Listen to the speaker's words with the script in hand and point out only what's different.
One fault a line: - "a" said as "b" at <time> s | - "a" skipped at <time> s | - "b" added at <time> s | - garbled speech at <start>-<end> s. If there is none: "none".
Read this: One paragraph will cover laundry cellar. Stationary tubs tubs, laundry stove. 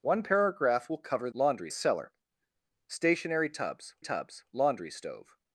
none